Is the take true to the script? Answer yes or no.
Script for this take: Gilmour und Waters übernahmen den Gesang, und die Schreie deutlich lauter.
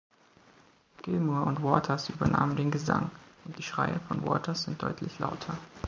no